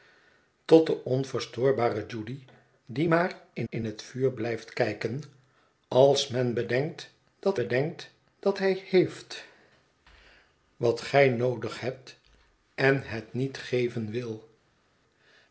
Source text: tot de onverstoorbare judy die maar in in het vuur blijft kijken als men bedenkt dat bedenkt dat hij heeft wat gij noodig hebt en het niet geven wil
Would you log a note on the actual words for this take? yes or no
no